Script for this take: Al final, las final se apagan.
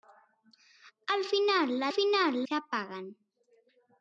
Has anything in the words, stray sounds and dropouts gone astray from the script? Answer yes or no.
no